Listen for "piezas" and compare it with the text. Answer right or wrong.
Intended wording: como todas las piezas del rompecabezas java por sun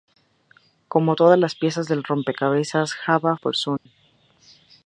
right